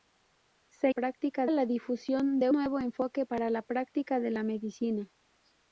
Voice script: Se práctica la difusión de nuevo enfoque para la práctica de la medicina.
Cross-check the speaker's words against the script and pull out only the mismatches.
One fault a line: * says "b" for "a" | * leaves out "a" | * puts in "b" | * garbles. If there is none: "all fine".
all fine